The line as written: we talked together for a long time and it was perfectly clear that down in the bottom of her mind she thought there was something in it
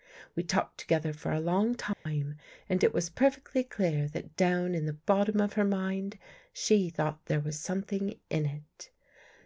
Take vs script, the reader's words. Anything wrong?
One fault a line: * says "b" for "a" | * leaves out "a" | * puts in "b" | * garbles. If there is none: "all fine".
all fine